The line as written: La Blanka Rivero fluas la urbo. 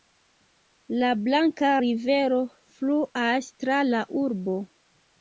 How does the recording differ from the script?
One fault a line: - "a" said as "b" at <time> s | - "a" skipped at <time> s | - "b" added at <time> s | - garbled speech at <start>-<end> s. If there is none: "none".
- "tra" added at 3.6 s